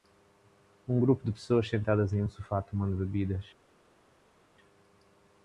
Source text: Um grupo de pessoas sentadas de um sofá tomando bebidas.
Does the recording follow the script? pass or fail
fail